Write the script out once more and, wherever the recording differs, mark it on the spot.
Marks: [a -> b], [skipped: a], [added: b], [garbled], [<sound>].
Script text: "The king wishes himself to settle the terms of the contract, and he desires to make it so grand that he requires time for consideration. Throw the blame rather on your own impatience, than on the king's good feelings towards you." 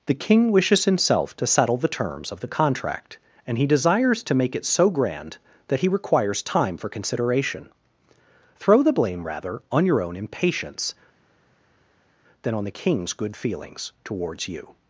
"The king wishes himself to settle the terms of the contract, and he desires to make it so grand that he requires time for consideration. Throw the blame rather on your own impatience, than on the king's good feelings towards you."